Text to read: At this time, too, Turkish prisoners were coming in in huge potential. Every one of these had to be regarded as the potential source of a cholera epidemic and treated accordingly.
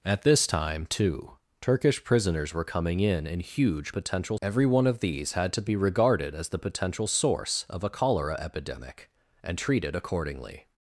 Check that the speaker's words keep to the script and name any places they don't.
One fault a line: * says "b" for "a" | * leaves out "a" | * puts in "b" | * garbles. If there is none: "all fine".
all fine